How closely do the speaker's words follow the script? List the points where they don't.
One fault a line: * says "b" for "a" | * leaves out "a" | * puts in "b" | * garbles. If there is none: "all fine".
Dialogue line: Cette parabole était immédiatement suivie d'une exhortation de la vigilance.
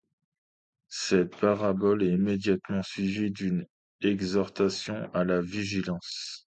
* says "est" for "était"
* says "à" for "de"